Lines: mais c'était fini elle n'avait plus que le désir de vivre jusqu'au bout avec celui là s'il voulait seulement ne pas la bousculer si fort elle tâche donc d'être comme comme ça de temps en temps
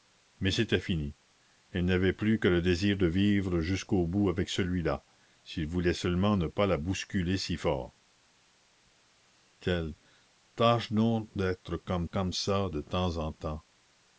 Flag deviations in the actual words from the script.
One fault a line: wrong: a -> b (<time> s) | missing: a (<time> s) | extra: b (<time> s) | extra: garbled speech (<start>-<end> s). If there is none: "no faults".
no faults